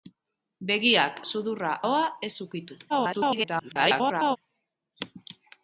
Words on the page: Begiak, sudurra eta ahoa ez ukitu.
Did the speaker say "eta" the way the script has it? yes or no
no